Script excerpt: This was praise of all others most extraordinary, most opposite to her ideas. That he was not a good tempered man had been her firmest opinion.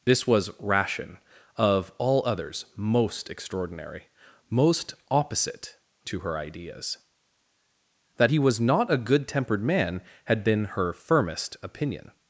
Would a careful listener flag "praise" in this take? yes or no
yes